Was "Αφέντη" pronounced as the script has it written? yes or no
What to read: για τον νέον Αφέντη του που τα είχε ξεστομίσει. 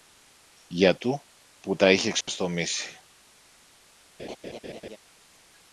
no